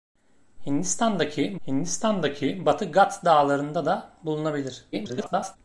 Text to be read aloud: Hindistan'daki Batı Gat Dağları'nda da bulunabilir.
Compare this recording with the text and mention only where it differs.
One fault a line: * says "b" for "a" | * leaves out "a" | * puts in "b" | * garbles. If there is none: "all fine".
* puts in "hindistan'daki"
* garbles